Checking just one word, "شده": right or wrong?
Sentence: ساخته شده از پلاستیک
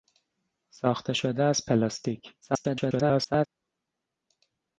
right